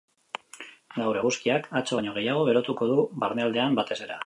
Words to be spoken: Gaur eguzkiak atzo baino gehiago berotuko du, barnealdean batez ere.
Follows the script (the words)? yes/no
yes